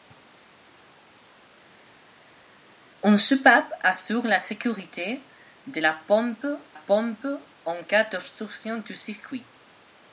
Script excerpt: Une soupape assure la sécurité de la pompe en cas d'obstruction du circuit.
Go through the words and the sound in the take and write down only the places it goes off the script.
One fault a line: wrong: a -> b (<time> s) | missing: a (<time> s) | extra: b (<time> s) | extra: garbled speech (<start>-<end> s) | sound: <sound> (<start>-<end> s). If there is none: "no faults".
extra: pompe (6.7 s)